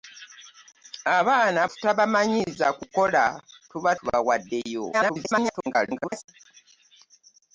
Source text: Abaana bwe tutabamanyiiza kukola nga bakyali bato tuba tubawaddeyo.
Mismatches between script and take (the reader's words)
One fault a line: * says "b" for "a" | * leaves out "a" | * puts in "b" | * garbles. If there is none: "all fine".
* leaves out "bwe"
* leaves out "nga bakyali bato"
* garbles